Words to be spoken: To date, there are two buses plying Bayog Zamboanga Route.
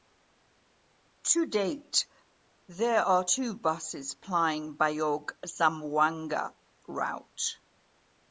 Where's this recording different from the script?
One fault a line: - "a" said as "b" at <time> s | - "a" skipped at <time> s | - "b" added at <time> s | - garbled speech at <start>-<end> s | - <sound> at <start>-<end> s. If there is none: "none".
none